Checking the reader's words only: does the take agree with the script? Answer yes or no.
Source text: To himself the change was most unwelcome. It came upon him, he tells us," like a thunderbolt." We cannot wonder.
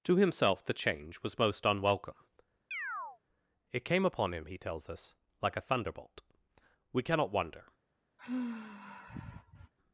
yes